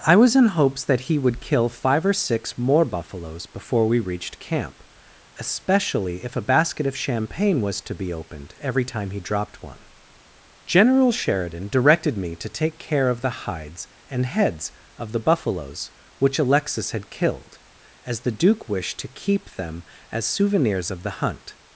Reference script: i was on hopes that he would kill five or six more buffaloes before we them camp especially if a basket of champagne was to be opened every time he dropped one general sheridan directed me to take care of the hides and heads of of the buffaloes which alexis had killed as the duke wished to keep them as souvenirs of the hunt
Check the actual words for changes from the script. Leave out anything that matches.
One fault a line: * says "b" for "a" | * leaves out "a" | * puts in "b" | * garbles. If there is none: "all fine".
* says "in" for "on"
* says "reached" for "them"
* leaves out "of"